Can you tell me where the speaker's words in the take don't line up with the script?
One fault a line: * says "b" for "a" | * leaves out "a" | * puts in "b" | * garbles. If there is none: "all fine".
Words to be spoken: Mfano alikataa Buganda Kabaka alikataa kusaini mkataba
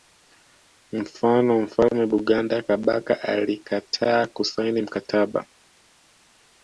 * says "mfalme" for "alikataa"